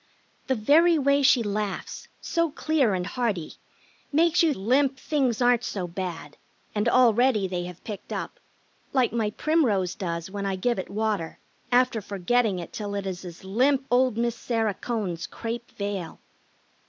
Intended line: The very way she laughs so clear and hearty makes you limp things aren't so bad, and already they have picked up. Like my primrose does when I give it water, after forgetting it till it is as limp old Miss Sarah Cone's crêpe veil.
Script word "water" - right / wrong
right